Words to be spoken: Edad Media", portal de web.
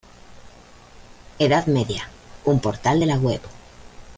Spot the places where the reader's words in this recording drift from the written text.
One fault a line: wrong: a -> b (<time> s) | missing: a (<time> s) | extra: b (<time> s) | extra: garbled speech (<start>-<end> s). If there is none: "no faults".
extra: un (2.5 s)
extra: la (3.1 s)